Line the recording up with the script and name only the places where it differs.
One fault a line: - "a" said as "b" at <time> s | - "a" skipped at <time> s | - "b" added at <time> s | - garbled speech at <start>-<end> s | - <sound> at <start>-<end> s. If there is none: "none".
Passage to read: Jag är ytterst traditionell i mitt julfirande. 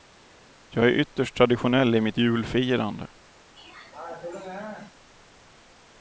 - throat clearing at 3.6-5.0 s